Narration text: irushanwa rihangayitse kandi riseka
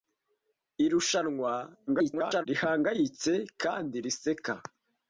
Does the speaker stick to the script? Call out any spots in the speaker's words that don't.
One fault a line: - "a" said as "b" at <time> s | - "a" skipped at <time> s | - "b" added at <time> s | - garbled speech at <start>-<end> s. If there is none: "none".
- garbled speech at 1.9-2.5 s